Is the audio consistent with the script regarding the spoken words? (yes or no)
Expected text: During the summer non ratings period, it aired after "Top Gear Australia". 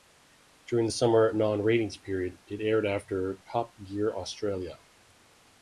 yes